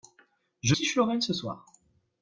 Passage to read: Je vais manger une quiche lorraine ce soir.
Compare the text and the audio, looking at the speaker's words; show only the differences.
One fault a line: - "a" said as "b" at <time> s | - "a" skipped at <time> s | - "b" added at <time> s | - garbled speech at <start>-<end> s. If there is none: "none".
- "vais manger une" skipped at 0.8 s